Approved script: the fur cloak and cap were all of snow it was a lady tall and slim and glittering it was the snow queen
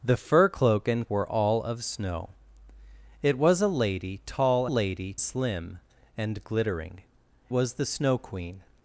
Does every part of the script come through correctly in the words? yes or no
no